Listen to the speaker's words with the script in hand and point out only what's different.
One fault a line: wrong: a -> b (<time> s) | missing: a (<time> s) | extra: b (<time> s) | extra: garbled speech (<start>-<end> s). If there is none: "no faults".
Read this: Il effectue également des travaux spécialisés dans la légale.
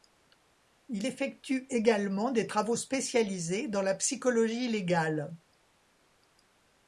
extra: psychologie (3.9 s)